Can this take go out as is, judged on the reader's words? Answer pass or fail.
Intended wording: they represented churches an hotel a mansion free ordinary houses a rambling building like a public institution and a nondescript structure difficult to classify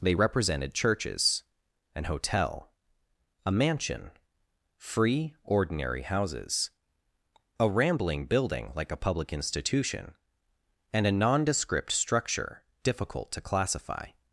pass